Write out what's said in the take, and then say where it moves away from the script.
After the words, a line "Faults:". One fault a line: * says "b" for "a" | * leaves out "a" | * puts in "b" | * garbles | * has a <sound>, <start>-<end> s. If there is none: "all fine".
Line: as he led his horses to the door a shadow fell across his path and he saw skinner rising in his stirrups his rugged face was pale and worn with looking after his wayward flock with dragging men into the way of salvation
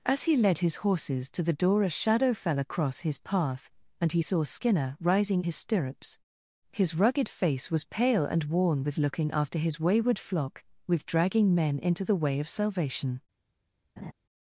as he led his horses to the door a shadow fell across his path and he saw skinner rising his stirrups his rugged face was pale and worn with looking after his wayward flock with dragging men into the way of salvation
Faults:
* leaves out "in"
* has a laugh, 14.0-14.1 s